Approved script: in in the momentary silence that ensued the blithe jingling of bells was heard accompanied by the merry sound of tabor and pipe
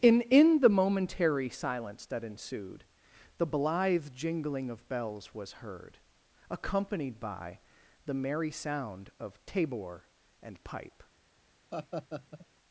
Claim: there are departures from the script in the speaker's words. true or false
false